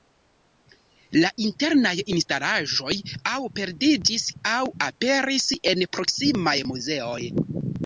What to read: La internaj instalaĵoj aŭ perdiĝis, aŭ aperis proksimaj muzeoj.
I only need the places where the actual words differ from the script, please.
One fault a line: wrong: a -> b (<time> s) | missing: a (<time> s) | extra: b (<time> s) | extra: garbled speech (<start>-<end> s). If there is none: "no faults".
extra: en (5.7 s)